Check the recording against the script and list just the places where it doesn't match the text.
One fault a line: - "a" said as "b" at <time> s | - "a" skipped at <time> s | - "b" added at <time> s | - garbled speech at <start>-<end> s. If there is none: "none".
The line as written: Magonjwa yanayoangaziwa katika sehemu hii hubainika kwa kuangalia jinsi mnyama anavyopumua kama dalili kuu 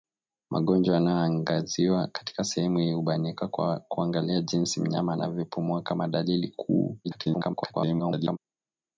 - garbled speech at 7.0-8.4 s